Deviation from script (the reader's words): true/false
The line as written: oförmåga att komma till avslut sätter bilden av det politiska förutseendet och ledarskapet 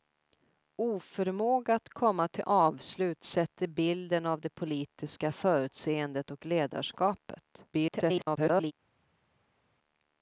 true